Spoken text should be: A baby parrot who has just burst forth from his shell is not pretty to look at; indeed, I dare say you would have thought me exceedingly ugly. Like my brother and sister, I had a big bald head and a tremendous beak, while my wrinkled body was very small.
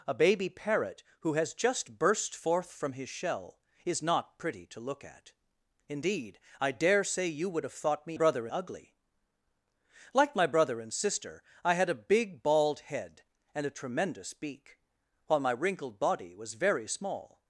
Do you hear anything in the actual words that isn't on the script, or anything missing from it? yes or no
yes